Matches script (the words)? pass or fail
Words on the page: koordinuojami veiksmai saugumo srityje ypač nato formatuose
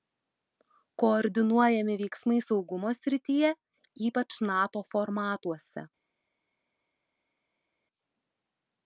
pass